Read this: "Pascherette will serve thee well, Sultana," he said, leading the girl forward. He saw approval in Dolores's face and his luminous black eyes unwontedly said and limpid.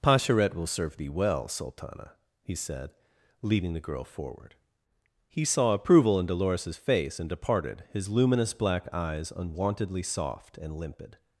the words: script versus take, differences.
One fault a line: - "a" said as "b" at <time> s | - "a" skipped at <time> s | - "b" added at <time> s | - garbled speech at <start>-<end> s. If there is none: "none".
- "departed" added at 7.3 s
- "said" said as "soft" at 10.0 s